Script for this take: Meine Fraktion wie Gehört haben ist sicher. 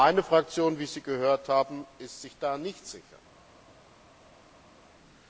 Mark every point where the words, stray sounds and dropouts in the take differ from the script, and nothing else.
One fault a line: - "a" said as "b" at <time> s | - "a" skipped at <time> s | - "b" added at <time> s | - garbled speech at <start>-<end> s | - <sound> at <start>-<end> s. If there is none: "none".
- "Sie" added at 0.9 s
- "sich da nicht" added at 2.2 s